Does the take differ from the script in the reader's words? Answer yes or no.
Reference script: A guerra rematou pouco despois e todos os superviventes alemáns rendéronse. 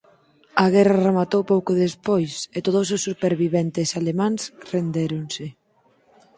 no